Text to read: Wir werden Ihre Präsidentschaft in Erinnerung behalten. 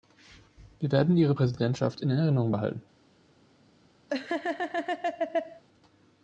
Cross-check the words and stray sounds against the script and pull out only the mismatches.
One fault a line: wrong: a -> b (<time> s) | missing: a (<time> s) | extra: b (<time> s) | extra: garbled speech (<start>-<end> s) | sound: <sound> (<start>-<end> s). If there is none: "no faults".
sound: laugh (4.1-5.6 s)